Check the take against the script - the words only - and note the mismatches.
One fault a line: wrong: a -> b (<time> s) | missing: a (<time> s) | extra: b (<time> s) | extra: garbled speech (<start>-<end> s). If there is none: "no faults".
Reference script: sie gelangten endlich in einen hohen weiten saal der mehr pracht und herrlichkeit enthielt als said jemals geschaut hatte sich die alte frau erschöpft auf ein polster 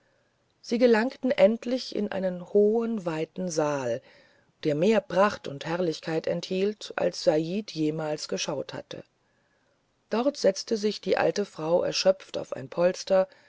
extra: dort setzte (10.1 s)